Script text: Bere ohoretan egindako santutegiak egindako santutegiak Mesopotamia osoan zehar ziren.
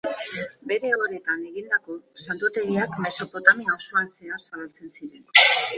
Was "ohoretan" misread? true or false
false